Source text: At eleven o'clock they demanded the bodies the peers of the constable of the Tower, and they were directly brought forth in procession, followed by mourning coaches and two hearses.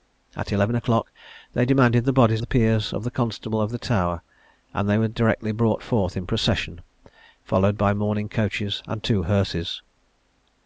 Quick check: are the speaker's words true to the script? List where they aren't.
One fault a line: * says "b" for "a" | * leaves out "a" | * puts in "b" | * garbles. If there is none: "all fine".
all fine